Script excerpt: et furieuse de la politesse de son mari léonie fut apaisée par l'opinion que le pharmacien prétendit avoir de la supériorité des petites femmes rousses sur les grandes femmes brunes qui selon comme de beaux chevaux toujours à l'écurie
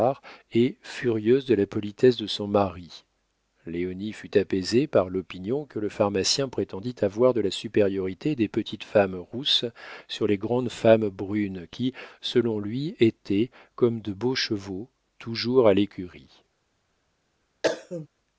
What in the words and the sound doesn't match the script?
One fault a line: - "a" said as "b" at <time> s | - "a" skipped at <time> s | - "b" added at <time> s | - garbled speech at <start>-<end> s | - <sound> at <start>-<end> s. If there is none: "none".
- "lui étaient" added at 12.6 s
- cough at 17.6-18.1 s